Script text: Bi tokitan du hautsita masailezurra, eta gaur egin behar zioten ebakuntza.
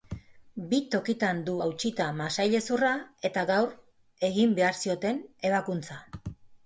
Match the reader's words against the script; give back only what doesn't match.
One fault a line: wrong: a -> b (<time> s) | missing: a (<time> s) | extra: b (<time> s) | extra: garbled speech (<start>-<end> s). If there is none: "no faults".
no faults